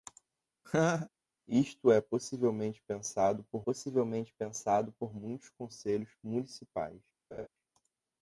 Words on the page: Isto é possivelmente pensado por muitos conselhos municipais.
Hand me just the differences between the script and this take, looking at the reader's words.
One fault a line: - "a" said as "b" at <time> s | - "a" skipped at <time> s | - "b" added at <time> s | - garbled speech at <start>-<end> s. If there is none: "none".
- "possivelmente pensado por" added at 3.6 s